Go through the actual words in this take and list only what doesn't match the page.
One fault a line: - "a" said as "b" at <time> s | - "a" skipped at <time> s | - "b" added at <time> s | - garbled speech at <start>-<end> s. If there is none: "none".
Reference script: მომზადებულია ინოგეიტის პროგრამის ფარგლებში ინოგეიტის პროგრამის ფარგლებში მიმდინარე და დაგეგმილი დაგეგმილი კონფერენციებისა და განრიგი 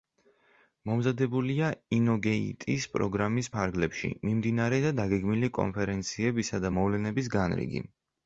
- "ინოგეიტის პროგრამის ფარგლებში" skipped at 4.1 s
- "დაგეგმილი" skipped at 5.5 s
- "მოვლენების" added at 6.8 s